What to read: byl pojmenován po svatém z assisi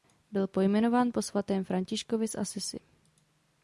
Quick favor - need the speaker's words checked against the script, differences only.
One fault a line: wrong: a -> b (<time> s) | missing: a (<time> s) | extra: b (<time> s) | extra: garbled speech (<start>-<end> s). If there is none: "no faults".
extra: františkovi (1.6 s)